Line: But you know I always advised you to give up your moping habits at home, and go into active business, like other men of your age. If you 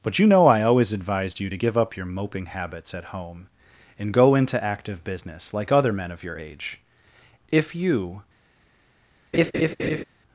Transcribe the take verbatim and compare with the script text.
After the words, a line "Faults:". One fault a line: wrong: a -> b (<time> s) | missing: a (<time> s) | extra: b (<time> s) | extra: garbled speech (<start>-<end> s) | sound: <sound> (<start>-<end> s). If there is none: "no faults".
But you know I always advised you to give up your moping habits at home, and go into active business, like other men of your age. If you
Faults:
sound: laugh (9.3-10.0 s)